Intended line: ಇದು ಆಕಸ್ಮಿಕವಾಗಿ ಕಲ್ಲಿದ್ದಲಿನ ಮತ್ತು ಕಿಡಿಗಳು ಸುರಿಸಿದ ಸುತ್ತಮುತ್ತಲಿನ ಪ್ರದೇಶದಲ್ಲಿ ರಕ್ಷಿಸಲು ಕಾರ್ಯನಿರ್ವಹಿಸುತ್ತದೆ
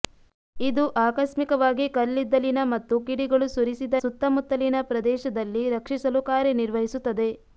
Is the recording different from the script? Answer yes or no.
no